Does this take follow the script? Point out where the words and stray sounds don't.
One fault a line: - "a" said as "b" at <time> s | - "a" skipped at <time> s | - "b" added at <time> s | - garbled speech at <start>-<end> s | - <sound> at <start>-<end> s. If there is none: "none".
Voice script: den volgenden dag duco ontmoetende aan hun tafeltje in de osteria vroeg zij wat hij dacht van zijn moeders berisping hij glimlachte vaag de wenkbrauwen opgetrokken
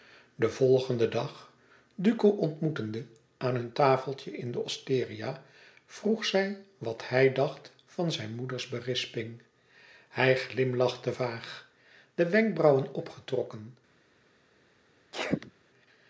- sneeze at 15.1-15.5 s